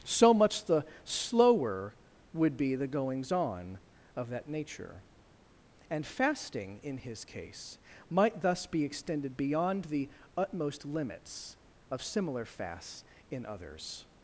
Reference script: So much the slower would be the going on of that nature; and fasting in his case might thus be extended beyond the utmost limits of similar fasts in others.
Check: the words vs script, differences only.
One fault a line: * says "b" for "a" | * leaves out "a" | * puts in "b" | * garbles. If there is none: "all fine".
* says "goings" for "going"